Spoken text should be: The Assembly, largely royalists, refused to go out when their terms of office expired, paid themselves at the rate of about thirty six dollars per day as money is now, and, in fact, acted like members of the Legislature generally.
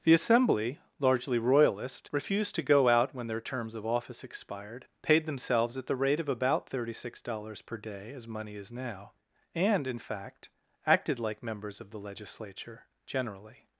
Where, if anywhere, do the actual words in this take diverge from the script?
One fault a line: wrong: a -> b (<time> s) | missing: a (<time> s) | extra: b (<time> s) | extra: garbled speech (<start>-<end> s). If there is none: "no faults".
wrong: royalists -> royalist (1.4 s)